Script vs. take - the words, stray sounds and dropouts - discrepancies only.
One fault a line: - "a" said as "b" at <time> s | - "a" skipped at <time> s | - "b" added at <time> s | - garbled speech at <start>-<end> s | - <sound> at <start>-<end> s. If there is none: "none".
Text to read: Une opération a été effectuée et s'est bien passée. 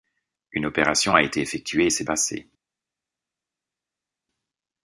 - "bien" skipped at 2.1 s